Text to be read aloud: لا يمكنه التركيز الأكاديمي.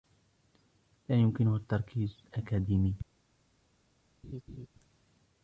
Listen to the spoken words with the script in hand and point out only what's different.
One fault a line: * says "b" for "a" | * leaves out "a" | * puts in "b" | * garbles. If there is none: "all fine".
all fine